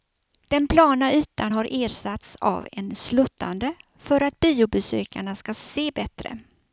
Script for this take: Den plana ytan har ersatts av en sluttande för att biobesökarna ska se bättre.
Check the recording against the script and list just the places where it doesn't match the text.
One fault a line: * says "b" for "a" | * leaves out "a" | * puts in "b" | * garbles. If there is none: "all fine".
all fine